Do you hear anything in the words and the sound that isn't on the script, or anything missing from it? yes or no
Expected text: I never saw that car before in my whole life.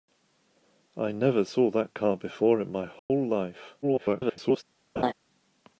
yes